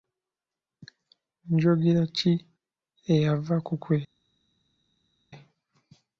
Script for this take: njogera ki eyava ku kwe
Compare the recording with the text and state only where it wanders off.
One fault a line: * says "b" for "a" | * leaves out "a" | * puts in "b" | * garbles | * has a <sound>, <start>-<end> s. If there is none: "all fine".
all fine